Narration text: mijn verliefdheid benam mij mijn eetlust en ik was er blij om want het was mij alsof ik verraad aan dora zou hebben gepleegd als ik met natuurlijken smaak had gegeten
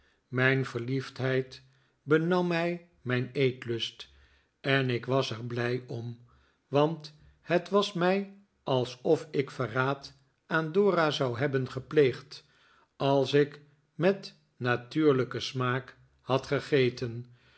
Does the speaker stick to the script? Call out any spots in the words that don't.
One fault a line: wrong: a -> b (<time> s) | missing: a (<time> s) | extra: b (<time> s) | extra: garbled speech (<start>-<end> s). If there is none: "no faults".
no faults